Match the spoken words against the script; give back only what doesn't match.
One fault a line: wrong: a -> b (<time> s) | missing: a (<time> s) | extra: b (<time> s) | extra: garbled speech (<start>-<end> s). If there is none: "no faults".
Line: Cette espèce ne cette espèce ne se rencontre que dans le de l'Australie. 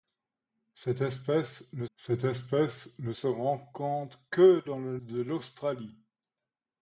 no faults